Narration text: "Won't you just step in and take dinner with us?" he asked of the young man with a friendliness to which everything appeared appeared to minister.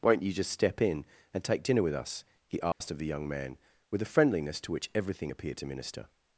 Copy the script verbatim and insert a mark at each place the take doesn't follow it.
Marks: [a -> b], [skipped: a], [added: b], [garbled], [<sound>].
"Won't you just step in and take dinner with us?" he asked [dropout] of the young man with a friendliness to which everything appeared [skipped: appeared] to minister.